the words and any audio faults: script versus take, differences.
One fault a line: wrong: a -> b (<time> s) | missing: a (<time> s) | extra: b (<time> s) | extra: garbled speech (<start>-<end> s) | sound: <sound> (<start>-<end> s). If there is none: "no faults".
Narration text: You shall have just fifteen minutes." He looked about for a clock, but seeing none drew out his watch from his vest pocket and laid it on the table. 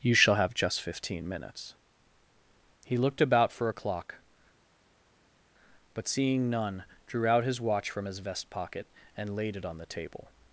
no faults